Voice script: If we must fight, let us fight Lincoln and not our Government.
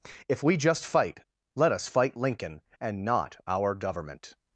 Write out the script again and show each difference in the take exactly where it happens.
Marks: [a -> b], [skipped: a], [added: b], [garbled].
If we [must -> just] fight, let us fight Lincoln and not our Government.